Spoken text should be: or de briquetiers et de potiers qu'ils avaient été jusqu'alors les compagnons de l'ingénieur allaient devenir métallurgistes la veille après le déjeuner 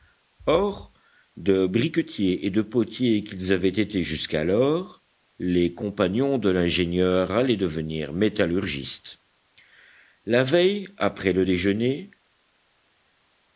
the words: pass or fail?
pass